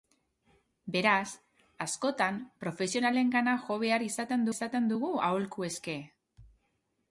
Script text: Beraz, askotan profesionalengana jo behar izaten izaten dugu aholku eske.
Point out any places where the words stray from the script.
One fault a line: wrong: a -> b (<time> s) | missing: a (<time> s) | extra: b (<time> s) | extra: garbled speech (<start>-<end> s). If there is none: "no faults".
no faults